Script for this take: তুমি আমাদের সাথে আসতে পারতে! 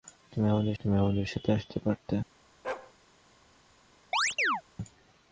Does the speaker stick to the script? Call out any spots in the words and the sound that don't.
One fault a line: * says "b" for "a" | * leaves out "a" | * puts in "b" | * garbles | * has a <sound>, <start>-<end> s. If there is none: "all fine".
* puts in "তুমি আমাদের"
* has a bark, 2.6-2.9 s
* has a chirp, 4.1-4.6 s